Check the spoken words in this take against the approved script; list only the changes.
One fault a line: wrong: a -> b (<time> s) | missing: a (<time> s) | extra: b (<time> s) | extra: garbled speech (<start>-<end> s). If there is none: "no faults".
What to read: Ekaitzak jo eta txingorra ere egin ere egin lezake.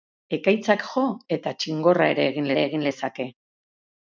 no faults